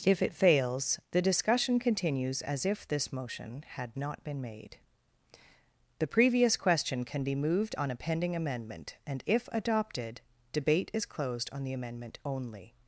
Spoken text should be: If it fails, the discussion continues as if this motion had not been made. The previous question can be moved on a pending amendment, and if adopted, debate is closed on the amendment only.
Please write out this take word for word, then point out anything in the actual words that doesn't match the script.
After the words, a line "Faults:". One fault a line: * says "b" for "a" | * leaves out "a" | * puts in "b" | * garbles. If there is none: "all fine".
If it fails, the discussion continues as if this motion had not been made. The previous question can be moved on a pending amendment, and if adopted, debate is closed on the amendment only.
Faults:
all fine